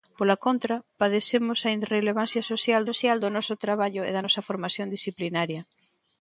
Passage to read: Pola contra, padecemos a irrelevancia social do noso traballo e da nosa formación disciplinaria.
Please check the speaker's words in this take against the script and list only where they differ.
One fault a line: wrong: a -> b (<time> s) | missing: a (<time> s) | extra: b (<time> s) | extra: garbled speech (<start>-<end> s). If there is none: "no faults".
extra: social (2.9 s)